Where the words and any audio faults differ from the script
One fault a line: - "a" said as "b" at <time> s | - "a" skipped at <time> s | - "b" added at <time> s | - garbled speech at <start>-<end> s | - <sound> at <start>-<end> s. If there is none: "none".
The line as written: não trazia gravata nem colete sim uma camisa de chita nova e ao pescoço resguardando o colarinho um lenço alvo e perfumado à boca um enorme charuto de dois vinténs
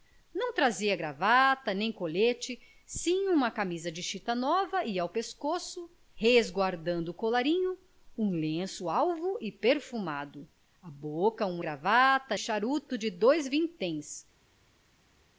- "enorme" said as "gravata" at 11.6 s